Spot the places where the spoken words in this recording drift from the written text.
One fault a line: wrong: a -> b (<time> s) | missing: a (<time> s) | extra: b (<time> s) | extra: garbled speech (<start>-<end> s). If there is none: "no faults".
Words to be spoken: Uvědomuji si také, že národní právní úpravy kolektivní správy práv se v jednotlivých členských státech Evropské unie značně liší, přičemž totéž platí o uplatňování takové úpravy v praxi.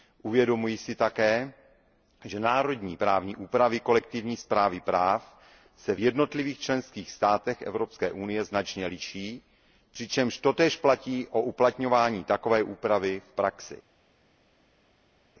no faults